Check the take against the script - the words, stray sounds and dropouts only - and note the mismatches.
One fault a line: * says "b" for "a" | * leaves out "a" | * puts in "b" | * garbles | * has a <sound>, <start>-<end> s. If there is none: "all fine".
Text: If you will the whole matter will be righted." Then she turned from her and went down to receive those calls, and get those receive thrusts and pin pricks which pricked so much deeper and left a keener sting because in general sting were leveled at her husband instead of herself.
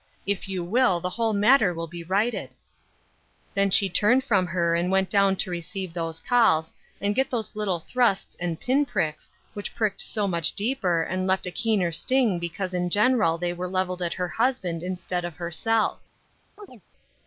* says "little" for "receive"
* says "they" for "sting"
* has a chirp, 16.6-16.8 s